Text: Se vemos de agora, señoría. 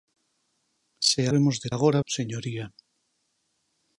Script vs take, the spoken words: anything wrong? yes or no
no